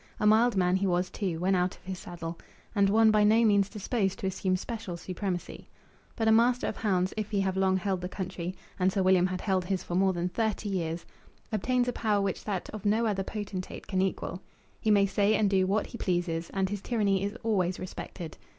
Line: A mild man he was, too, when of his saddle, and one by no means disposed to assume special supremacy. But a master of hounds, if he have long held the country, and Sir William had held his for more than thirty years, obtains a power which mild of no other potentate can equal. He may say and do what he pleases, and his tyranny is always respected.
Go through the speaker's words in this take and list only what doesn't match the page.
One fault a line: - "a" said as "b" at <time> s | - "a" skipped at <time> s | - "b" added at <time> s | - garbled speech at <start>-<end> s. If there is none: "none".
- "out" added at 1.5 s
- "mild" said as "that" at 12.4 s